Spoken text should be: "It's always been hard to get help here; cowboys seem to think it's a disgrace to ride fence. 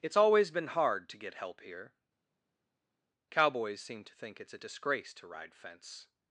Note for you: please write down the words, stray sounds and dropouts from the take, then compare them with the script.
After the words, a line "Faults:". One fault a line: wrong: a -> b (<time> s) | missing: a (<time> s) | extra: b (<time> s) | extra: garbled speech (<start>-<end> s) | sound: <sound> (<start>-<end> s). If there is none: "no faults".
"It's always been hard to get help here; cowboys seem to think it's a disgrace to ride fence.
Faults:
no faults